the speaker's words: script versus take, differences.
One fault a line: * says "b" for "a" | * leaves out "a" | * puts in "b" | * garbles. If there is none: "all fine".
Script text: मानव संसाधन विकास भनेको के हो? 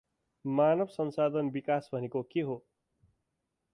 all fine